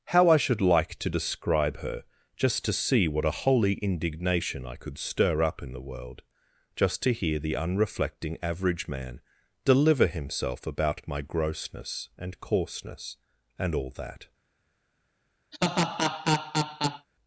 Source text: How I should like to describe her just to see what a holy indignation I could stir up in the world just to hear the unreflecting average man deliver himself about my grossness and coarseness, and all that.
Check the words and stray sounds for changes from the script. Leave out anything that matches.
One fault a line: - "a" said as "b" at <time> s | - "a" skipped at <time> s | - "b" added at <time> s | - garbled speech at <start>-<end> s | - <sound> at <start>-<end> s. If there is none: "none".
- laugh at 15.5-17.1 s